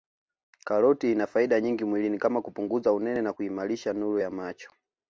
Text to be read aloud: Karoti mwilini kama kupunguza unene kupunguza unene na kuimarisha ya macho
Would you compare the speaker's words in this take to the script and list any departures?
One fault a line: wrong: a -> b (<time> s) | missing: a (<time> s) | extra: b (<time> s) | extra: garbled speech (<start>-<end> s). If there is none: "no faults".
extra: ina faida nyingi (1.1 s)
missing: kupunguza unene (3.2 s)
extra: nuru (3.9 s)